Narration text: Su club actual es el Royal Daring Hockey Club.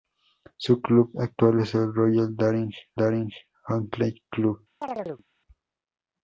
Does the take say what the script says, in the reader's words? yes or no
no